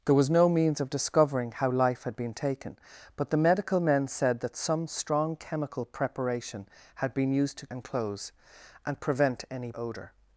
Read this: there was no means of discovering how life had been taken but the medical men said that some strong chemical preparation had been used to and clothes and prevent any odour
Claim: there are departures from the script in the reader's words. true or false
false